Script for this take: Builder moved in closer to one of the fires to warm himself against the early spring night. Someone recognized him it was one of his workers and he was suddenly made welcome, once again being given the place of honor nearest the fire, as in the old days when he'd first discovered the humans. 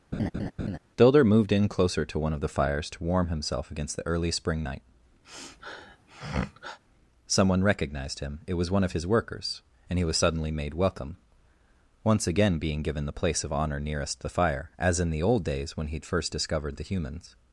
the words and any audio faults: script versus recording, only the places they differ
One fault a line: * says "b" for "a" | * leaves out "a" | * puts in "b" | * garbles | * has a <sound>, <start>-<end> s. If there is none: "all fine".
* has a laugh, 0.1-0.8 s
* has a sniff, 5.2-6.8 s